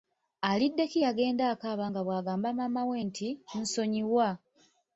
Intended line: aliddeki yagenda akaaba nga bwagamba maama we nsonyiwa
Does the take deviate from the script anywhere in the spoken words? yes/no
yes